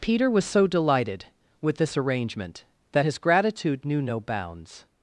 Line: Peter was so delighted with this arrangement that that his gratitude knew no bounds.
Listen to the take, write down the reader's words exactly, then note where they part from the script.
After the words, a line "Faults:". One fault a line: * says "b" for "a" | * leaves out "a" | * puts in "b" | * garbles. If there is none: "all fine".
Peter was so delighted with this arrangement that his gratitude knew no bounds.
Faults:
* leaves out "that"